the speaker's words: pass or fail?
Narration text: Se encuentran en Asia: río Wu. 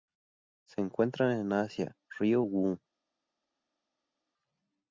pass